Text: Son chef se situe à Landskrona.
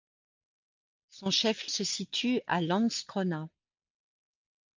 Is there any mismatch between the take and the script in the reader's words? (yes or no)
no